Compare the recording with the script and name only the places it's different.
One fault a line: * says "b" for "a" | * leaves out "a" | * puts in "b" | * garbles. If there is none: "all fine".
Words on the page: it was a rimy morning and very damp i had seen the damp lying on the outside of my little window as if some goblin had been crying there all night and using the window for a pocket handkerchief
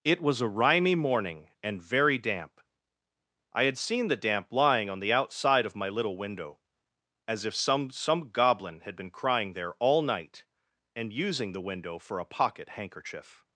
* puts in "some"